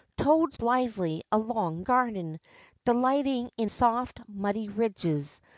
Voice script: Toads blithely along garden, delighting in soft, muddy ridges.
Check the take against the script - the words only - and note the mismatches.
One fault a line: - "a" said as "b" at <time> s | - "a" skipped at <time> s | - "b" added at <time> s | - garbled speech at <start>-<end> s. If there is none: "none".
none